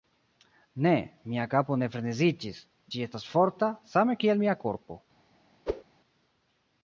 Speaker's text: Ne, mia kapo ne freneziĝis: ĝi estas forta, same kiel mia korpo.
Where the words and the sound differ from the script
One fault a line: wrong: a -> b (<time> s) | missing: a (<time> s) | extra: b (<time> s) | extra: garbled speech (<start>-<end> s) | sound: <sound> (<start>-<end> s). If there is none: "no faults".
sound: whoosh (5.7-5.8 s)